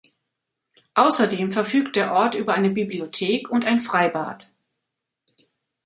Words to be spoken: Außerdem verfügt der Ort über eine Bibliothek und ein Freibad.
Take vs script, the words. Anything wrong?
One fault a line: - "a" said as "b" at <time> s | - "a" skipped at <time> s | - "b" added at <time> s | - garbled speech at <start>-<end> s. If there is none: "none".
none